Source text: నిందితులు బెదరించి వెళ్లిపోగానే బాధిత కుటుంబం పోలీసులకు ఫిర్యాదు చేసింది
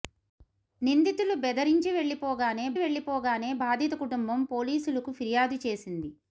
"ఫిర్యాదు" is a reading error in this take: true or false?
false